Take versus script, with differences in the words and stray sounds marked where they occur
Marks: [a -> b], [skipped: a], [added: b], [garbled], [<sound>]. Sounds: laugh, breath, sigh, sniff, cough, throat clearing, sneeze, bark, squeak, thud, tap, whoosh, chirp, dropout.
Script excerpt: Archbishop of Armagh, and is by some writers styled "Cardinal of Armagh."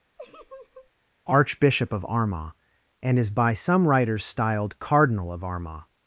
[laugh] Archbishop of Armagh, and is by some writers styled "Cardinal of Armagh."